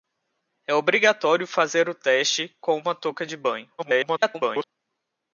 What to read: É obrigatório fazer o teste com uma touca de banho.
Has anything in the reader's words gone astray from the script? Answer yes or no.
yes